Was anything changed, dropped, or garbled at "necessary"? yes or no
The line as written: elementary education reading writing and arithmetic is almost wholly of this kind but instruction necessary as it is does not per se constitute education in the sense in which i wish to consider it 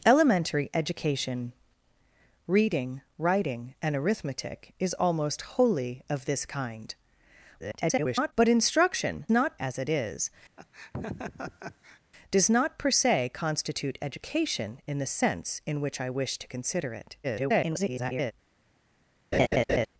yes